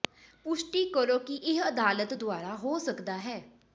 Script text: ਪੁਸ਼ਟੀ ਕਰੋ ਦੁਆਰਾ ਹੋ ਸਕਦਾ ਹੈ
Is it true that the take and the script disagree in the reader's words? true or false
true